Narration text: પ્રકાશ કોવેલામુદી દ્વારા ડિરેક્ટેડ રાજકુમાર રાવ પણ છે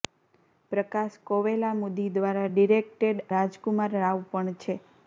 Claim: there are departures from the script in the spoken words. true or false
false